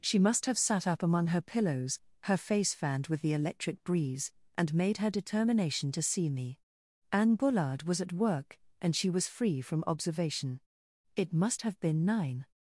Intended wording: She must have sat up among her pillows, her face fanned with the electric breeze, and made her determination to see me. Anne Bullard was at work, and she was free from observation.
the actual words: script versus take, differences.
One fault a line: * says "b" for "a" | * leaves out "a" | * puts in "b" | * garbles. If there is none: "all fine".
* puts in "It must have been nine"